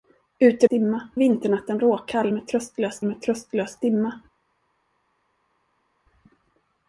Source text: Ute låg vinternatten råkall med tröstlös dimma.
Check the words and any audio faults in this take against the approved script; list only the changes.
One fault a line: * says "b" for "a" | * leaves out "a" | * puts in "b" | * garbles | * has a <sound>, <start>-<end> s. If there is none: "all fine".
* says "dimma" for "låg"
* puts in "med tröstlös"